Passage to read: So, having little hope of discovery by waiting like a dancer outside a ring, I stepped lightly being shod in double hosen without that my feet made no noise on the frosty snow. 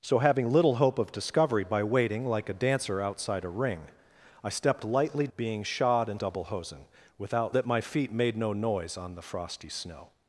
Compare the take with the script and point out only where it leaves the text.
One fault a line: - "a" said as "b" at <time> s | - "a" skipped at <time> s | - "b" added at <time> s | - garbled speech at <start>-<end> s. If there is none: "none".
none